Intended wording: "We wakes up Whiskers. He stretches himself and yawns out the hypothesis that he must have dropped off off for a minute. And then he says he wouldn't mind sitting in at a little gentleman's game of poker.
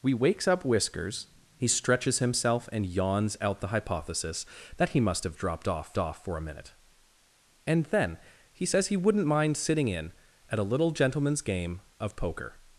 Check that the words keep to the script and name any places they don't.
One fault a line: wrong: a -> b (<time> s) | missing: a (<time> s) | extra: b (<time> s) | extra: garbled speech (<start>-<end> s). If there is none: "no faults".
no faults